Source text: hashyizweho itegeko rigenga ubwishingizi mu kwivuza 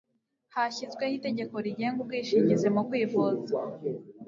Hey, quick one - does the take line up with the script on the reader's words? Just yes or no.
yes